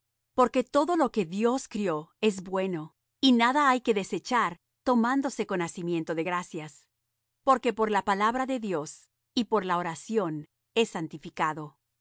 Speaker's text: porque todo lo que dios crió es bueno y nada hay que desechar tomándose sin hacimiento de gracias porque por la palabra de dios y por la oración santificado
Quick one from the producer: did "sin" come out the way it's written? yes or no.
no